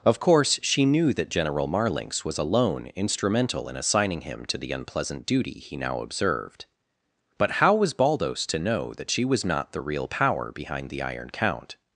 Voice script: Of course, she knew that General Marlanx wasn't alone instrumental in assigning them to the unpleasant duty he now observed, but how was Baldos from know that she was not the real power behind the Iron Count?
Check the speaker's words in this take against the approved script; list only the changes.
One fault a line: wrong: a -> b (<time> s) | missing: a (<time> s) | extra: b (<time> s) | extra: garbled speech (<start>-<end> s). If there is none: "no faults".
wrong: wasn't -> was (2.2 s)
wrong: them -> him (4.2 s)
wrong: from -> to (8.5 s)